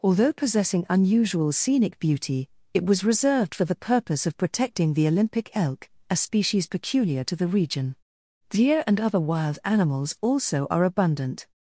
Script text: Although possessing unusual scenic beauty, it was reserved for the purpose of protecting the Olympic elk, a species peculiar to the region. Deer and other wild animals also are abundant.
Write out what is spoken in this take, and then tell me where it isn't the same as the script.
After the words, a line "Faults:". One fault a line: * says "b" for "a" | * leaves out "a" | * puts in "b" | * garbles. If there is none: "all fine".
Although possessing unusual scenic beauty, it was reserved for the purpose of protecting the Olympic elk, a species peculiar to the region. Deer and other wild animals also are abundant.
Faults:
all fine